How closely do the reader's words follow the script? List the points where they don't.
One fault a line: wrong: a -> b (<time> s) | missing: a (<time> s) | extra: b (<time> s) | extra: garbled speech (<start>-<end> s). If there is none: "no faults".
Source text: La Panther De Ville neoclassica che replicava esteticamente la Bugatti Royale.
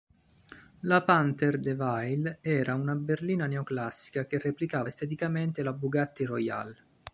extra: era una berlina (2.4 s)